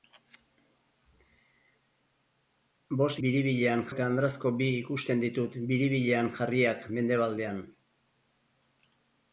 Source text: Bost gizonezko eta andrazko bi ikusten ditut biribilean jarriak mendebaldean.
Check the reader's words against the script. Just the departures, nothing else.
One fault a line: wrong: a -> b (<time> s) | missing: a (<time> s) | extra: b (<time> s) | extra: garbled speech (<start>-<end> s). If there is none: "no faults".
wrong: gizonezko -> biribilean (3.3 s)